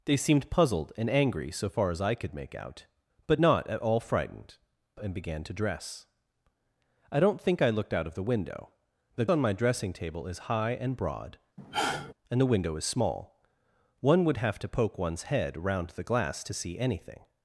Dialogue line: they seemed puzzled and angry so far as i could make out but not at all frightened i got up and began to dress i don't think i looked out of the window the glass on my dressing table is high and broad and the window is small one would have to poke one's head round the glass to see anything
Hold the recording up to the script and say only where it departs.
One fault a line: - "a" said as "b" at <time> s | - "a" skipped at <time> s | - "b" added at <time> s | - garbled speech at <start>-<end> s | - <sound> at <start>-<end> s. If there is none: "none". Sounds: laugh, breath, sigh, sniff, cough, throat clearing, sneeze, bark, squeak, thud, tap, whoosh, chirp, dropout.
- "i got up" skipped at 4.6 s
- "glass" skipped at 9.3 s
- sigh at 11.6-12.1 s